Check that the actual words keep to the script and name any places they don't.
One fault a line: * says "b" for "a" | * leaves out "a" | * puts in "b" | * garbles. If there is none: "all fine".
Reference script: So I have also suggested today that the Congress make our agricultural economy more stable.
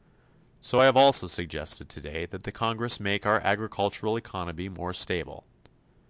all fine